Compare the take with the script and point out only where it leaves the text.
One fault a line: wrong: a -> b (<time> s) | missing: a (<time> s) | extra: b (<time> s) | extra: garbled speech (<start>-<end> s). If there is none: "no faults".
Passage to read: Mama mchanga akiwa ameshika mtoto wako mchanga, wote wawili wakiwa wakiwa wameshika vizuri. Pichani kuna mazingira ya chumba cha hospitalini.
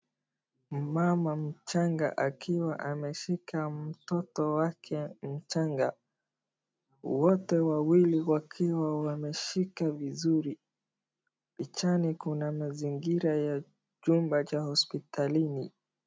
wrong: wako -> wake (4.5 s)
missing: wakiwa (9.0 s)